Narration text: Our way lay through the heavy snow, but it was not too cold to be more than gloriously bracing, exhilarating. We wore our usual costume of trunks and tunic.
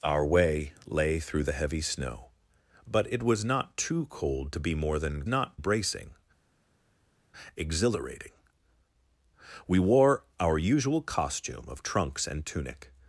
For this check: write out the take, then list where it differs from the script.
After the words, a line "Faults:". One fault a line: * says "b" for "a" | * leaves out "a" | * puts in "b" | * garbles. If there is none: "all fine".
Our way lay through the heavy snow, but it was not too cold to be more than not bracing, exhilarating. We wore our usual costume of trunks and tunic.
Faults:
* says "not" for "gloriously"